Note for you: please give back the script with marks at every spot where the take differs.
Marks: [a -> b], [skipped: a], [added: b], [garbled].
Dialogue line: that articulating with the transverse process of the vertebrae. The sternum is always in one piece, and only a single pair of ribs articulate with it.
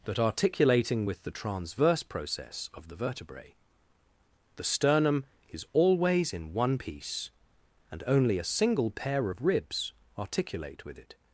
that articulating with the transverse process of the vertebrae. The sternum is always in one piece, and only a single pair of ribs articulate with it.